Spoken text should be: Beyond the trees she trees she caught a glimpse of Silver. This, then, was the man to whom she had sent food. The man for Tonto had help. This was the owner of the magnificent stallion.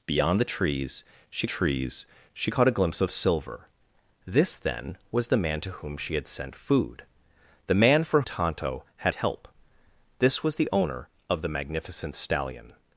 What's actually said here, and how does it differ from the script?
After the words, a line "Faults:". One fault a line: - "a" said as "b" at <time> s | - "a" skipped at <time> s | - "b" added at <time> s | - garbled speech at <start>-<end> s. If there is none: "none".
Beyond the trees she trees she caught a glimpse of Silver. This, then, was the man to whom she had sent food. The man for Tonto had help. This was the owner of the magnificent stallion.
Faults:
none